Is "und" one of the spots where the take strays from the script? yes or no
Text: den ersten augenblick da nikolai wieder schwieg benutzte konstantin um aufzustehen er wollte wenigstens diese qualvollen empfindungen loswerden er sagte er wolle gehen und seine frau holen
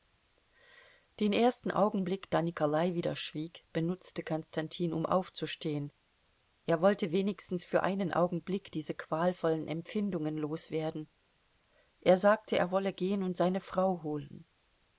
no